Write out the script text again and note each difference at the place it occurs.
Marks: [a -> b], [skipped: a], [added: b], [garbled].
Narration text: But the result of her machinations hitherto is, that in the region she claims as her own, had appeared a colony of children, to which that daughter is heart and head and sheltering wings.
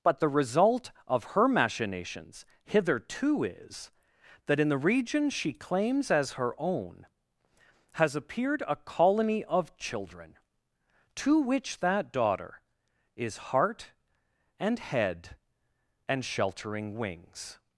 But the result of her machinations hitherto is, that in the region she claims as her own, [had -> has] appeared a colony of children, to which that daughter is heart and head and sheltering wings.